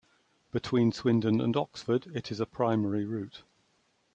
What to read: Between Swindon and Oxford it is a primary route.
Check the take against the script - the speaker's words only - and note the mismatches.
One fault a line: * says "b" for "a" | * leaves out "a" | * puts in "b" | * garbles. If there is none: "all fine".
all fine